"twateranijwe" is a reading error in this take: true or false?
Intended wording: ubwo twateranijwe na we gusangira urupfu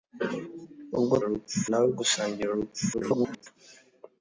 true